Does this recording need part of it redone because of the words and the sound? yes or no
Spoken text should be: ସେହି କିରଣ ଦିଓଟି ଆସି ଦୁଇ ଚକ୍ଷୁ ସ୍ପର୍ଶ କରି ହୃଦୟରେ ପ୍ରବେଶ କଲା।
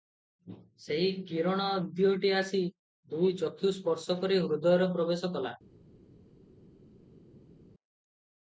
no